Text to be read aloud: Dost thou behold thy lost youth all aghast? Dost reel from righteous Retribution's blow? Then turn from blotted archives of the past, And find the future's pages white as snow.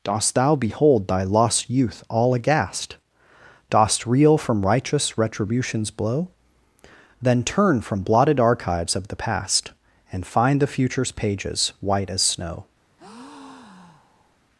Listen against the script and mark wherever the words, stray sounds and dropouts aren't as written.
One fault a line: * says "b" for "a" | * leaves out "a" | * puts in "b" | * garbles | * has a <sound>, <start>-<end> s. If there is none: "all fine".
* has a breath, 13.0-14.4 s